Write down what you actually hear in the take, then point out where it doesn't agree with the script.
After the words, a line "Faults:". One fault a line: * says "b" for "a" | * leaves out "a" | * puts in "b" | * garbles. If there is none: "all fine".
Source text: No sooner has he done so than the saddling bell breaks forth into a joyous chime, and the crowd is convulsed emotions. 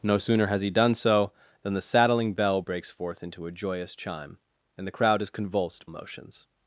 No sooner has he done so than the saddling bell breaks forth into a joyous chime, and the crowd is convulsed emotions.
Faults:
all fine